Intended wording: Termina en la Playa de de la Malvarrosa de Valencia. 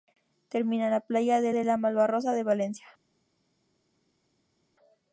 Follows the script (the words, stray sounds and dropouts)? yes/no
yes